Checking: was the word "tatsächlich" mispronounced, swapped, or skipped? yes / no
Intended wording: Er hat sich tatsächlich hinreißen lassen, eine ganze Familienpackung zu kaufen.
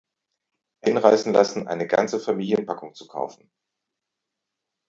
yes